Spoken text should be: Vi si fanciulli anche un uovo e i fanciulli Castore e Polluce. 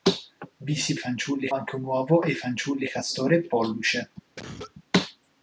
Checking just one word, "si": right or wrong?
right